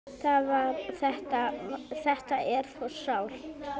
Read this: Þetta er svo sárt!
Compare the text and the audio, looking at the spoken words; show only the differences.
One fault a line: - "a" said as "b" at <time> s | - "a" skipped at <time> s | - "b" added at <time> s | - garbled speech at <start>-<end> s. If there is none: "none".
none